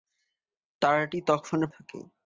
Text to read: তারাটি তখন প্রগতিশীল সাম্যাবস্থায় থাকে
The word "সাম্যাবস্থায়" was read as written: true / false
false